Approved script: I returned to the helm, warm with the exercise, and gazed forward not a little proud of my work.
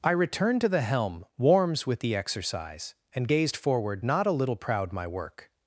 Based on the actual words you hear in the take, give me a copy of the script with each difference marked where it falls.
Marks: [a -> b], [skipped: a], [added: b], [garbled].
I returned to the helm, [warm -> warms] with the exercise, and gazed forward not a little proud [skipped: of] my work.